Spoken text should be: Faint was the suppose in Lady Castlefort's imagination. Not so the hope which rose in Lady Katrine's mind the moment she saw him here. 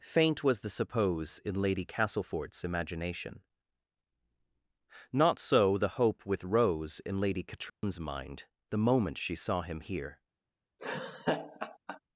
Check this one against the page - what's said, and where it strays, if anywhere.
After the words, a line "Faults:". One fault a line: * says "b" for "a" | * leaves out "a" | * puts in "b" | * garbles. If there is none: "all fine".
Faint was the suppose in Lady Castlefort's imagination. Not so the hope with rose in Lady Katrine's mind the moment she saw him here.
Faults:
* says "with" for "which"